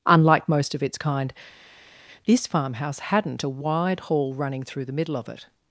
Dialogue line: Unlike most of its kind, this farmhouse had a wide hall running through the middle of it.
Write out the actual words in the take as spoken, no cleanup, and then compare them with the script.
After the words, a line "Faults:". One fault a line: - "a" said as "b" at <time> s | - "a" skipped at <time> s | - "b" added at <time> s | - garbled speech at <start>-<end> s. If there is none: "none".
Unlike most of its kind, this farmhouse hadn't a wide hall running through the middle of it.
Faults:
- "had" said as "hadn't" at 3.0 s